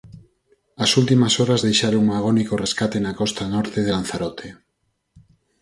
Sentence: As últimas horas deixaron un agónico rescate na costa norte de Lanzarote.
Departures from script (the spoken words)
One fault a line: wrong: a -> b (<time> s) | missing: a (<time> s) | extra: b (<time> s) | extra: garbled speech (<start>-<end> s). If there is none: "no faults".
no faults